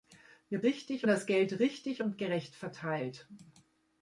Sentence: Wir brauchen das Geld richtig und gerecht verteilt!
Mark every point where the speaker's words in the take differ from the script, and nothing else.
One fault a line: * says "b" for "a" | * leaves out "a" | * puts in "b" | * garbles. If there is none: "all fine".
* says "richtig" for "brauchen"